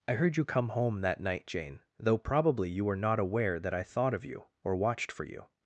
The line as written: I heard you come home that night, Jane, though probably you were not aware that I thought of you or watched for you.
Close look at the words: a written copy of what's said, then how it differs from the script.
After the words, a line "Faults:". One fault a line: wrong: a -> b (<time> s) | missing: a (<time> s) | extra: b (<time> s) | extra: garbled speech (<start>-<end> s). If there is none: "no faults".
I heard you come home that night, Jane, though probably you were not aware that I thought of you or watched for you.
Faults:
no faults